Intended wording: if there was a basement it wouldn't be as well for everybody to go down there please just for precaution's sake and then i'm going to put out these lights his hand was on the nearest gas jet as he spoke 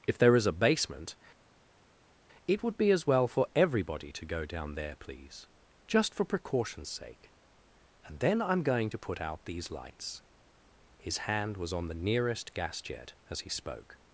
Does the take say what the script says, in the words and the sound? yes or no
no